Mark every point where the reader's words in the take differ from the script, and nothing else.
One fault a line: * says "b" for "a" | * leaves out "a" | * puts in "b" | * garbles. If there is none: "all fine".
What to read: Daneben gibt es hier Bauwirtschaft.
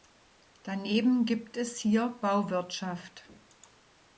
all fine